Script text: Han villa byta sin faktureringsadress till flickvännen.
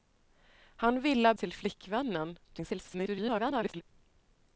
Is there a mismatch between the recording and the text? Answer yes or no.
yes